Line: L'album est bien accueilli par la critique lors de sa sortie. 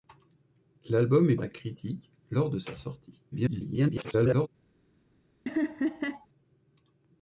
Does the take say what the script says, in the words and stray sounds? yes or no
no